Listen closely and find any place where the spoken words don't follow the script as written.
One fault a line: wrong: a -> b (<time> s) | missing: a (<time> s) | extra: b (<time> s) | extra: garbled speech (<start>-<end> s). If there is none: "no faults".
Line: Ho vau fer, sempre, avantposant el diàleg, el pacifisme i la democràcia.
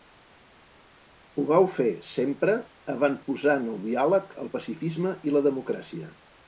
no faults